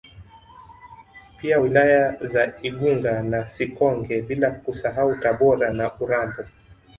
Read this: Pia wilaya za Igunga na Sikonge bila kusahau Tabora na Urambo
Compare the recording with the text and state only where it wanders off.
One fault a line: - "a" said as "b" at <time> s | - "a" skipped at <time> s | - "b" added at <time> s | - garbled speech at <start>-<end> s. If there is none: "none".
none